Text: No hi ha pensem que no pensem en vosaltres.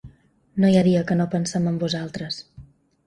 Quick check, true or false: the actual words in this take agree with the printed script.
false